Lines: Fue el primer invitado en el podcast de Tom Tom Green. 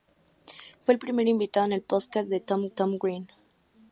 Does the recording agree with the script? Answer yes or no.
yes